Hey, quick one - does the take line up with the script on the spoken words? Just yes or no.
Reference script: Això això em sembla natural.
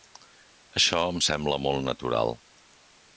no